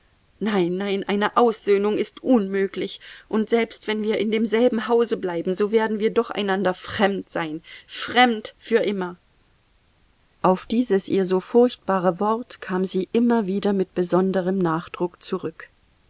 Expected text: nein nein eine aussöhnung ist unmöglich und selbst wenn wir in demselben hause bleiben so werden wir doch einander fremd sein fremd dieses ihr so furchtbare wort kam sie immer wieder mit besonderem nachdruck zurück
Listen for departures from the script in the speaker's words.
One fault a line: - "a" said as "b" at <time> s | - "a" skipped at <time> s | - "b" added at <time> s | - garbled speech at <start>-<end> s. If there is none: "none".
- "für immer auf" added at 8.6 s